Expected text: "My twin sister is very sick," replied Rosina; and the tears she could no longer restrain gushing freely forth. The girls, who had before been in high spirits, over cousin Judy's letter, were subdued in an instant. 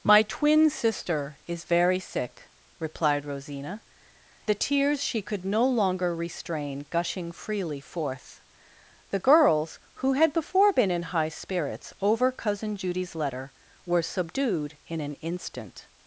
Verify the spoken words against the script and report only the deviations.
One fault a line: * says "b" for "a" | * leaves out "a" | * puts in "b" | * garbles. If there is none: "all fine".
* leaves out "and"